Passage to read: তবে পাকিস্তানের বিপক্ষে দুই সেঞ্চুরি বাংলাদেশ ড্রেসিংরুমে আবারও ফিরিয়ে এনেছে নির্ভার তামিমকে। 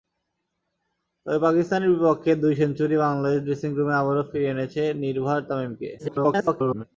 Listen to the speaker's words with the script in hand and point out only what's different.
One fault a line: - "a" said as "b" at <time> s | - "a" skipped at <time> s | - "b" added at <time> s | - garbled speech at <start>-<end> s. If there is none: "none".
- garbled speech at 6.0-6.8 s